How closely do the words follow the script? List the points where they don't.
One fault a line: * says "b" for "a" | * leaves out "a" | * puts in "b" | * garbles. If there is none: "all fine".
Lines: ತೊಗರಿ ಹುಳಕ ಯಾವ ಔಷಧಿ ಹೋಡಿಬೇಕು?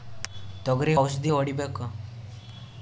* leaves out "ಹುಳಕ ಯಾವ"